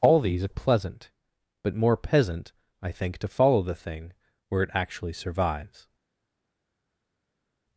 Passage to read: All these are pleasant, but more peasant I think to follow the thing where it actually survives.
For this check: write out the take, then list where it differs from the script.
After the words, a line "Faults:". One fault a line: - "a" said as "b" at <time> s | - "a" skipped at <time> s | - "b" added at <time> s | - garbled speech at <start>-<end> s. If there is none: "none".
All these are pleasant, but more peasant I think to follow the thing where it actually survives.
Faults:
none